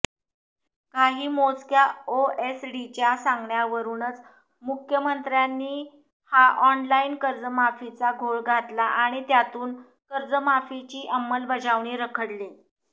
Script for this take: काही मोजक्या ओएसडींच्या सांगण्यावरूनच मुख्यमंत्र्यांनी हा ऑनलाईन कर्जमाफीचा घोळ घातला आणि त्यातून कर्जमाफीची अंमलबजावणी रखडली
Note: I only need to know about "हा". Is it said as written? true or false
true